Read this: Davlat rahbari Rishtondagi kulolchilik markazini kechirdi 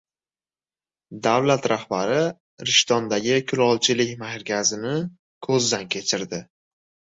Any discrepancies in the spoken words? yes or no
yes